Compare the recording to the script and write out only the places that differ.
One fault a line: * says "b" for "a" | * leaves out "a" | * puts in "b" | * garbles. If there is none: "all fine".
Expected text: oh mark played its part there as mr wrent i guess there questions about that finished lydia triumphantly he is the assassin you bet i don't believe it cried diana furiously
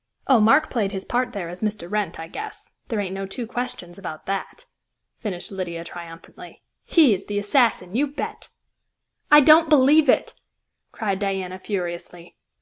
* says "his" for "its"
* puts in "ain't no two"